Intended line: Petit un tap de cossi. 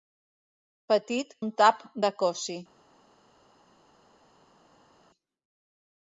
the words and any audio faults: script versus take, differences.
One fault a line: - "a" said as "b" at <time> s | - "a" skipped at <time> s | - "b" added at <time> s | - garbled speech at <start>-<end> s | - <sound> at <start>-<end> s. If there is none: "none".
none